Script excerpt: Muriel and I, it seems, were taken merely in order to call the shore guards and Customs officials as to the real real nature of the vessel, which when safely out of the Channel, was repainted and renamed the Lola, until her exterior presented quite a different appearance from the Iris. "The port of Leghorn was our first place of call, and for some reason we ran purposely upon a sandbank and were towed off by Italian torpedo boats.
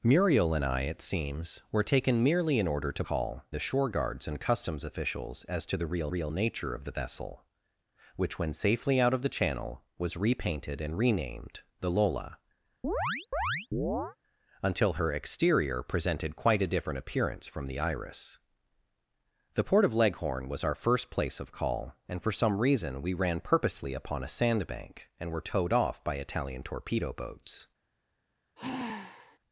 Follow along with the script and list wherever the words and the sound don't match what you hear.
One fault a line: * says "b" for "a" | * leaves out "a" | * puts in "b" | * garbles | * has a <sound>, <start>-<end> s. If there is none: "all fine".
* has a chirp, 12.8-14.2 s
* has a sigh, 28.6-29.4 s